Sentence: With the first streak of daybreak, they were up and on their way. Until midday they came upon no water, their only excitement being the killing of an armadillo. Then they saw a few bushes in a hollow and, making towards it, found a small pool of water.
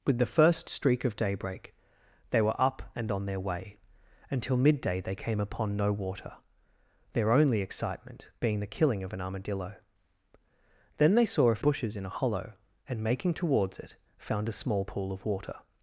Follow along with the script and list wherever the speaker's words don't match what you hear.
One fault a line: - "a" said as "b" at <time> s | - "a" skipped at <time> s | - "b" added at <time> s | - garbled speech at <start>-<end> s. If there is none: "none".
- "few" skipped at 11.6 s